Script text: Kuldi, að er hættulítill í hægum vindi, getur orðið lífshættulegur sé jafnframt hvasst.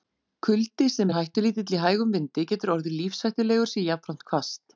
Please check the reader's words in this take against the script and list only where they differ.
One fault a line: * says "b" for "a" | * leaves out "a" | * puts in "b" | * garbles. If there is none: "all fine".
* says "sem" for "að"